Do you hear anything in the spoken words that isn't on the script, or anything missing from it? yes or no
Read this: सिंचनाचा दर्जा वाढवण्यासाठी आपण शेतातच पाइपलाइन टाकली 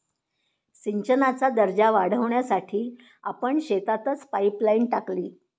no